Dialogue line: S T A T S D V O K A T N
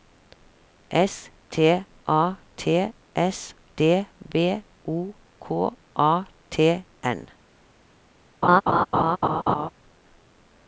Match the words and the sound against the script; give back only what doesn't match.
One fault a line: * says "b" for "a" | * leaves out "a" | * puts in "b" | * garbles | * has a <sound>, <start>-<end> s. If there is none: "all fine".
* has a laugh, 8.4-9.7 s